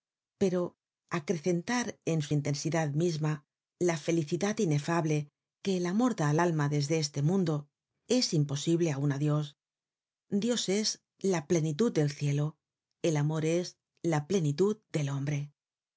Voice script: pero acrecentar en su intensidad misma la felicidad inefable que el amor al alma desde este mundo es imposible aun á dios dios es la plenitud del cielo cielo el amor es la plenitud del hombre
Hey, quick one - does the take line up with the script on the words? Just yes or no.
no